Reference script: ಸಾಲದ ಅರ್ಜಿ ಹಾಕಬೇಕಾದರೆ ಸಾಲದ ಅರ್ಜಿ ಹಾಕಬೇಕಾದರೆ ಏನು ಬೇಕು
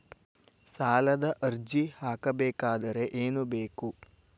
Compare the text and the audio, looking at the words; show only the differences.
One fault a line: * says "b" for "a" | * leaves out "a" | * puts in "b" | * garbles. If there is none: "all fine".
* leaves out "ಸಾಲದ ಅರ್ಜಿ ಹಾಕಬೇಕಾದರೆ"